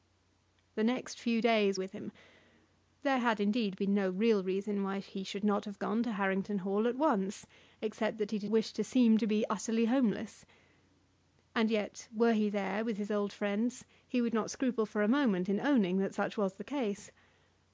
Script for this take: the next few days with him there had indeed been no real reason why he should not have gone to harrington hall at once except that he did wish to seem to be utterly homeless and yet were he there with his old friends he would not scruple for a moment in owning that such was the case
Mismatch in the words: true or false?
false